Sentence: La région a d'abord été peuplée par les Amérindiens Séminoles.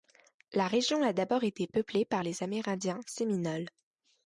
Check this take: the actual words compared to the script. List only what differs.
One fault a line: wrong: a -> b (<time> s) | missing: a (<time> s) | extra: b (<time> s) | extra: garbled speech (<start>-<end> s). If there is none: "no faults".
no faults